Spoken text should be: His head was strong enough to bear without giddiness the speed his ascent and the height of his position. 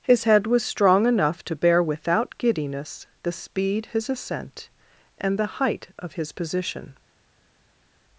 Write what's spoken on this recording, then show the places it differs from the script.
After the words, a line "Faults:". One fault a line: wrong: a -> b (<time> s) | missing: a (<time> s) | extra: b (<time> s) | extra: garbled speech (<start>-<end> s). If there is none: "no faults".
His head was strong enough to bear without giddiness the speed his ascent and the height of his position.
Faults:
no faults